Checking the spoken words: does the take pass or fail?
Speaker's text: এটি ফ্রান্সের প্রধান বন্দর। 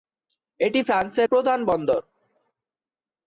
pass